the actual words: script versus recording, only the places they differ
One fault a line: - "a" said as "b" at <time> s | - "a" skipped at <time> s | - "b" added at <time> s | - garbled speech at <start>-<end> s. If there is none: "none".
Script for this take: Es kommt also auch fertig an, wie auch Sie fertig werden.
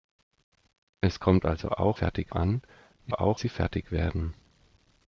none